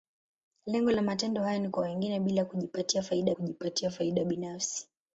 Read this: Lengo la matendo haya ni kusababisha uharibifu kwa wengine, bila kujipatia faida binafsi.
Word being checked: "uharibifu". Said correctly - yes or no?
no